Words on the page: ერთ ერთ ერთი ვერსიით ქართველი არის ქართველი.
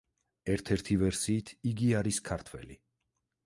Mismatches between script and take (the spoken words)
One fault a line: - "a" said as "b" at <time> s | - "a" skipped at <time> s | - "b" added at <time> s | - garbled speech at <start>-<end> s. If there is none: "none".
- "ერთ" skipped at 0.7 s
- "ქართველი" said as "იგი" at 1.7 s